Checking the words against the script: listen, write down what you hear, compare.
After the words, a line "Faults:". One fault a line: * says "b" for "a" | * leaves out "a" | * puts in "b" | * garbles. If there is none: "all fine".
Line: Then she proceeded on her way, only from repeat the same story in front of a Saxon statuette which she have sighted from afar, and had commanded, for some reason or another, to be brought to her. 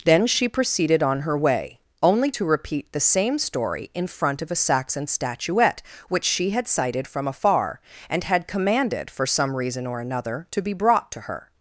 Then she proceeded on her way, only to repeat the same story in front of a Saxon statuette which she had sighted from afar, and had commanded, for some reason or another, to be brought to her.
Faults:
* says "to" for "from"
* says "had" for "have"